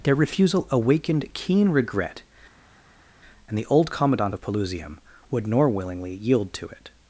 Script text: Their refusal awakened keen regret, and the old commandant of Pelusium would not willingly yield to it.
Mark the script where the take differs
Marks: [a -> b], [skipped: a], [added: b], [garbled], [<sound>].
Their refusal awakened keen regret, and the old commandant of Pelusium would [not -> nor] willingly yield to it.